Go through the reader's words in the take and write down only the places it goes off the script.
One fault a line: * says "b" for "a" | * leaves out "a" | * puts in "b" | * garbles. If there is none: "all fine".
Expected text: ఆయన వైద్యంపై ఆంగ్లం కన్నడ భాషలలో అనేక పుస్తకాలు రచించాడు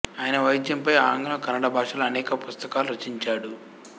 all fine